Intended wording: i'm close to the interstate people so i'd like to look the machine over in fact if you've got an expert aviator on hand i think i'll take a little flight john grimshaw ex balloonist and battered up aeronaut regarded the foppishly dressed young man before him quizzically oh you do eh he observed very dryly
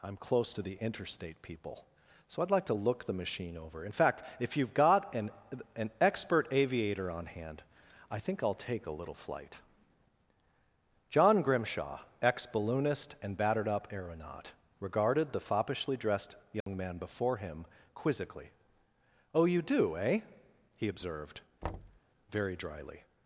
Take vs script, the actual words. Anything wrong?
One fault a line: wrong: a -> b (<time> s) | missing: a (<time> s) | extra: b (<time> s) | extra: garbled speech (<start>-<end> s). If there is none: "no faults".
extra: an (5.7 s)